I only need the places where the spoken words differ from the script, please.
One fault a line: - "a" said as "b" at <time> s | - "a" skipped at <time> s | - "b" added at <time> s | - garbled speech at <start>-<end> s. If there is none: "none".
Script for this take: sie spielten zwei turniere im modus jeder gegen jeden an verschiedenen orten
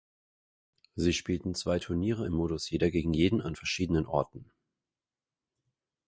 none